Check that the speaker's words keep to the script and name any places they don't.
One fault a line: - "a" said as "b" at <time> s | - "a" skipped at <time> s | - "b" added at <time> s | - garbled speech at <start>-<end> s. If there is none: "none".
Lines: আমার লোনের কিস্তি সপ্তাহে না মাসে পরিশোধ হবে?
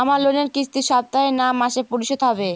none